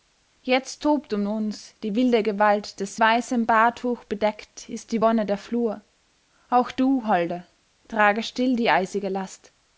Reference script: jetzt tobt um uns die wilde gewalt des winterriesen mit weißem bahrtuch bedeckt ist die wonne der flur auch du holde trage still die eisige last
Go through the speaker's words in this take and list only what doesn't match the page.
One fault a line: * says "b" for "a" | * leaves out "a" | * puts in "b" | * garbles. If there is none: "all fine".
* leaves out "winterriesen mit"